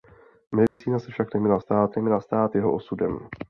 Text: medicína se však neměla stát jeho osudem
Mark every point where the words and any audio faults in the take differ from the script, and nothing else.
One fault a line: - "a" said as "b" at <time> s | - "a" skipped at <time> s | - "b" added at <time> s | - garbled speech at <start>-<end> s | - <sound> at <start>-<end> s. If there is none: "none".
- dropout at 0.7-0.8 s
- "neměla stát" added at 2.0 s